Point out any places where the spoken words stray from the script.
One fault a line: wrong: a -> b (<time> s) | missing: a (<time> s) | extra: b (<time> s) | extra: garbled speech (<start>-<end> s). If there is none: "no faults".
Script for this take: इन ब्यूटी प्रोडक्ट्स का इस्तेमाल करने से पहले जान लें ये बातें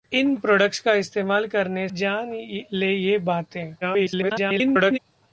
missing: ब्यूटी (0.3 s)
missing: से पहले (1.9 s)
extra: garbled speech (3.8-5.0 s)